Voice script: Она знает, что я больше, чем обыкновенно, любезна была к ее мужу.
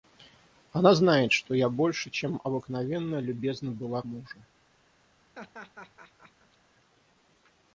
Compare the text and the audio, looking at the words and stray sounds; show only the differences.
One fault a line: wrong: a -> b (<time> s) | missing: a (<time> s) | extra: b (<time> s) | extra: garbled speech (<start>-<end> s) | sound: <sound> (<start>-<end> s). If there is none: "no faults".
missing: к ее (4.0 s)
sound: laugh (5.3-6.6 s)